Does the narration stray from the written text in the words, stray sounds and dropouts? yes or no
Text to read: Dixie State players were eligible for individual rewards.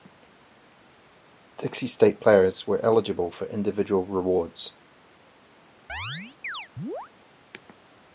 yes